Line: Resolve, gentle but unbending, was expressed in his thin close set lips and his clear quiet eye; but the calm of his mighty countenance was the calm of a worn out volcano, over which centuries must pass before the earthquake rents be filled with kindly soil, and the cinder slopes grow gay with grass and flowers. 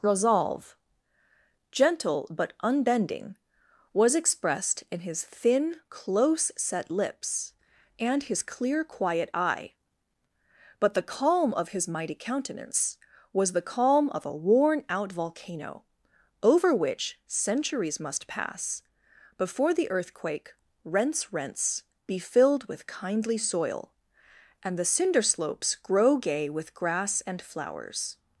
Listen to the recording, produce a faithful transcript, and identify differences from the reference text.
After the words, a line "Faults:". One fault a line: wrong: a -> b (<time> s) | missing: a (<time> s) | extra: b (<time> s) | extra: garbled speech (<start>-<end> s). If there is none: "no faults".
Resolve, gentle but unbending, was expressed in his thin close set lips and his clear quiet eye; but the calm of his mighty countenance was the calm of a worn out volcano, over which centuries must pass before the earthquake rents rents be filled with kindly soil, and the cinder slopes grow gay with grass and flowers.
Faults:
extra: rents (21.3 s)